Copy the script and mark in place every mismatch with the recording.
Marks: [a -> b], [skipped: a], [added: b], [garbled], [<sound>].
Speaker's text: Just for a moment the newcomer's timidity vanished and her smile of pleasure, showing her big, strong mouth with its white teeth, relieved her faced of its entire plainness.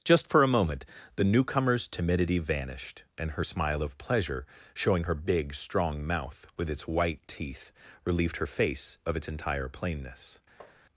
Just for a moment the newcomer's timidity vanished and her smile of pleasure, showing her big, strong mouth with its white teeth, relieved her [faced -> face] of its entire plainness. [tap]